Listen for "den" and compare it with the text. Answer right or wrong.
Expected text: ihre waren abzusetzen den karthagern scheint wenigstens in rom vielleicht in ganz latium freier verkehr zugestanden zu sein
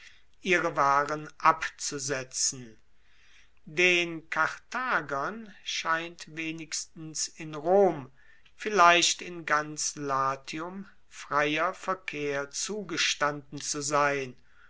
right